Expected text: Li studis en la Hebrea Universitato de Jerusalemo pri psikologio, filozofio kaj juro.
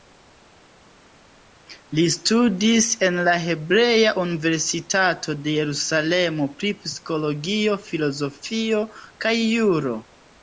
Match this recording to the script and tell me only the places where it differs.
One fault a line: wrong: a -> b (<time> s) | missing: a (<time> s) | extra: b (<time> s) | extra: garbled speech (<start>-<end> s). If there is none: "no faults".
no faults